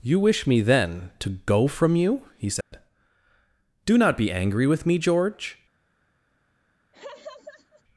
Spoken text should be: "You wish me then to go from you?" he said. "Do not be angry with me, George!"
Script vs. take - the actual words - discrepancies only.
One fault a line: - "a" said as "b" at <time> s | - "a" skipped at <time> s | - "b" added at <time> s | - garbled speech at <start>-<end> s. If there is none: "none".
none